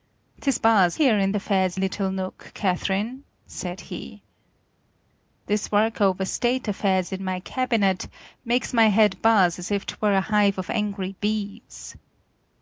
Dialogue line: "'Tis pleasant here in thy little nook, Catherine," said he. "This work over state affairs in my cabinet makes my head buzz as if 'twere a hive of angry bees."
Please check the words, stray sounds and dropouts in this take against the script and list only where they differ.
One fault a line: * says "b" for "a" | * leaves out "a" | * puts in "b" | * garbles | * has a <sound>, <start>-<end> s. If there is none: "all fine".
* says "buzz" for "pleasant"
* says "affairs" for "thy"